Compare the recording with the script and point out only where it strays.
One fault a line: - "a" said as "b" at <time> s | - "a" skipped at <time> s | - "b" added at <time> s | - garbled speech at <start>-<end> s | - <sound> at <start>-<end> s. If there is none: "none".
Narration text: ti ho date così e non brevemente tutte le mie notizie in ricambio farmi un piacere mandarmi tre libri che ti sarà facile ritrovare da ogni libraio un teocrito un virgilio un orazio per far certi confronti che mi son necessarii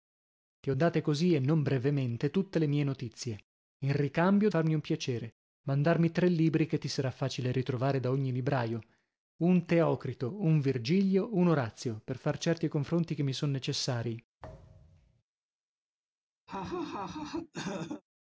- thud at 14.4-15.2 s
- laugh at 16.5-18.0 s